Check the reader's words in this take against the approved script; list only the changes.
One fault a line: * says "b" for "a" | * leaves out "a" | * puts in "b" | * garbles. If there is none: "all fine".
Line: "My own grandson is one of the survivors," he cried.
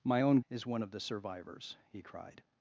* leaves out "grandson"